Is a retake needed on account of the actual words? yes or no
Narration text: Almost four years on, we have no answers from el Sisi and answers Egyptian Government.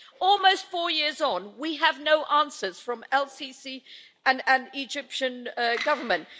yes